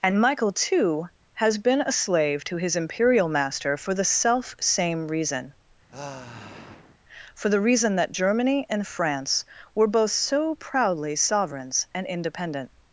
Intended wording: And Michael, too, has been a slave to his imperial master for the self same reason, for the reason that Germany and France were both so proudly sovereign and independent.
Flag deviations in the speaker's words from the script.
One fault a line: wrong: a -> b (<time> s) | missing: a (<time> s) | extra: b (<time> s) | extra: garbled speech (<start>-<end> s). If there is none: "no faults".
wrong: sovereign -> sovereigns (11.2 s)